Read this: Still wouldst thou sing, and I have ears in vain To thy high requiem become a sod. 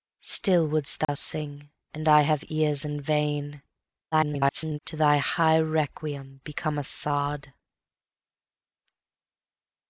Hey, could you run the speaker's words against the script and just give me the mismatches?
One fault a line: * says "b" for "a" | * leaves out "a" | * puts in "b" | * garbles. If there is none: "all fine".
* garbles